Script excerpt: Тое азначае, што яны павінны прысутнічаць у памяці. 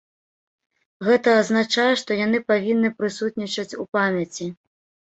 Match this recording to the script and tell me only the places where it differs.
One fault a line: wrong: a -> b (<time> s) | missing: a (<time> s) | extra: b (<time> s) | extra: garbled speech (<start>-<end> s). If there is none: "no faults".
wrong: Тое -> Гэта (1.1 s)